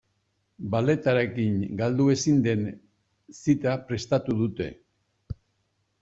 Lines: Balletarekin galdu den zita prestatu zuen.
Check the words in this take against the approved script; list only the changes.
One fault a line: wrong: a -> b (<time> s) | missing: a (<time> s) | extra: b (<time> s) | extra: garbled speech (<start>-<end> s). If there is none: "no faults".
extra: ezin (2.1 s)
wrong: zuen -> dute (4.4 s)